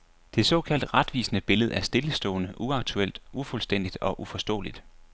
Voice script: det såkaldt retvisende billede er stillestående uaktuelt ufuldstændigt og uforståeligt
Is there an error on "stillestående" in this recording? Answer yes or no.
no